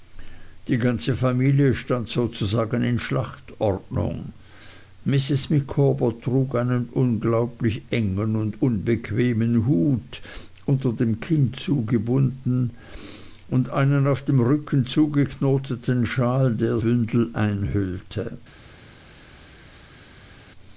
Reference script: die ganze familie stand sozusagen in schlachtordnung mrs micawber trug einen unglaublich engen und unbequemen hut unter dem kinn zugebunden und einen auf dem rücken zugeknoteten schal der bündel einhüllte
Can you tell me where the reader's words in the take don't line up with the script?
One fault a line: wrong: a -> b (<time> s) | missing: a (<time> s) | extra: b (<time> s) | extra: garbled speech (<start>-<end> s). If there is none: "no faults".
no faults